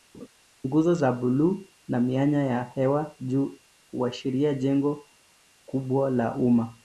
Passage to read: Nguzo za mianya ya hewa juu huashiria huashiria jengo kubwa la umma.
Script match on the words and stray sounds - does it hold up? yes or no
no